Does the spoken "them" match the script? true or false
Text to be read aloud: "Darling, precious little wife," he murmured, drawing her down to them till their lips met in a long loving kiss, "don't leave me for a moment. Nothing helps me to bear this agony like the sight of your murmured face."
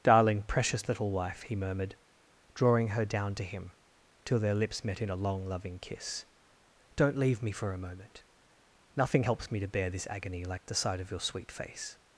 false